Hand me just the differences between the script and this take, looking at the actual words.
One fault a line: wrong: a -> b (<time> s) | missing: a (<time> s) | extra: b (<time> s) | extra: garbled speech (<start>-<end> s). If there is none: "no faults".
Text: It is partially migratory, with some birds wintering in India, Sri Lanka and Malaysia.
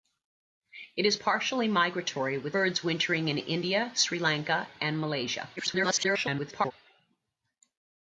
missing: some (2.6 s)
extra: garbled speech (5.6-6.7 s)